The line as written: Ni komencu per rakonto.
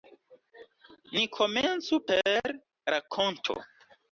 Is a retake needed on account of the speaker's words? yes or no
no